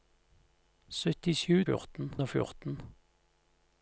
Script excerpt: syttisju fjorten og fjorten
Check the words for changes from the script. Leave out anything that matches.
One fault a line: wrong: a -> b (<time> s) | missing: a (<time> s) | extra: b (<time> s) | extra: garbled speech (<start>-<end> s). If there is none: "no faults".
no faults